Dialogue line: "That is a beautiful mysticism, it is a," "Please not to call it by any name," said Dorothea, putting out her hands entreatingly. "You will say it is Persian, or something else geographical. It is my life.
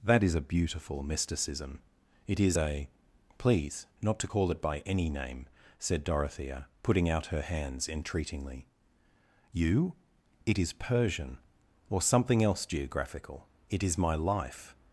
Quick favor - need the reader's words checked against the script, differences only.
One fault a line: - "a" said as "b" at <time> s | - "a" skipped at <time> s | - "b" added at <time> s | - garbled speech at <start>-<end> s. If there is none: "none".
- "will say" skipped at 9.9 s